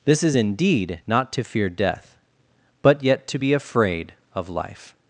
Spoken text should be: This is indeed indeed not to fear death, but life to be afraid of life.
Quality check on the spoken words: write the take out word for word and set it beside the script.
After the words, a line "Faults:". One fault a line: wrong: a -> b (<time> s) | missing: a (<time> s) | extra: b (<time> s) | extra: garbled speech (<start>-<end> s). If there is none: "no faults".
This is indeed not to fear death, but yet to be afraid of life.
Faults:
missing: indeed (1.0 s)
wrong: life -> yet (3.0 s)